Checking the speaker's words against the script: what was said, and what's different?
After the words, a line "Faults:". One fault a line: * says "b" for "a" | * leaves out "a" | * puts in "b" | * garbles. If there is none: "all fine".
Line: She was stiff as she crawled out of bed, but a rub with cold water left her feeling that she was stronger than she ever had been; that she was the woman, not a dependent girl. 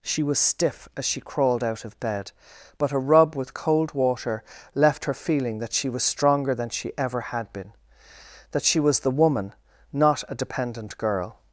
She was stiff as she crawled out of bed, but a rub with cold water left her feeling that she was stronger than she ever had been; that she was the woman, not a dependent girl.
Faults:
all fine